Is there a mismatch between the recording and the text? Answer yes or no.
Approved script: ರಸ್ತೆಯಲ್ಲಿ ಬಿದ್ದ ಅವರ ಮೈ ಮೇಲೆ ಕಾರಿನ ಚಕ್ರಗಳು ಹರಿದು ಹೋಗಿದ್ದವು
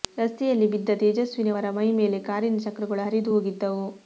yes